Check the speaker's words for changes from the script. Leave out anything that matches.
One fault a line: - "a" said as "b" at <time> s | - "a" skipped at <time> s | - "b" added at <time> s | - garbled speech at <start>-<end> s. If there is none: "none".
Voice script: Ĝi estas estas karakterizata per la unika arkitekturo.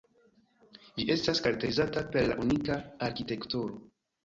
- "estas" skipped at 1.4 s